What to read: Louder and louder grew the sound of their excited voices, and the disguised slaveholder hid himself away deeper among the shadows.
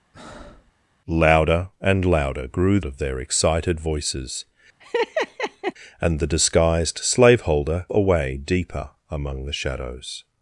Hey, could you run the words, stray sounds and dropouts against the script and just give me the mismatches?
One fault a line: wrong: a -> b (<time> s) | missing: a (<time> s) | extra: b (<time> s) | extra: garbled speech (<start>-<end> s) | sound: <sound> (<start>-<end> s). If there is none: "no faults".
sound: breath (0.1-0.7 s)
missing: the sound (2.8 s)
sound: laugh (4.8-5.7 s)
missing: hid himself (7.9 s)